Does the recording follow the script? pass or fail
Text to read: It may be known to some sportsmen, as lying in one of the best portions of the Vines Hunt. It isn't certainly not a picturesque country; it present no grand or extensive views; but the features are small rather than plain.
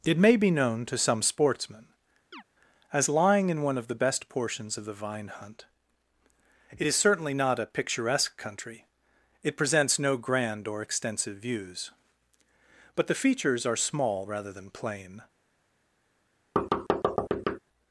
fail